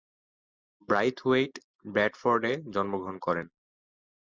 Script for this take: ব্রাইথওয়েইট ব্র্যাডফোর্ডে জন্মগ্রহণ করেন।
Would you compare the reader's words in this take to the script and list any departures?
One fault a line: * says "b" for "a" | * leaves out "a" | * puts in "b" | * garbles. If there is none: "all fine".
all fine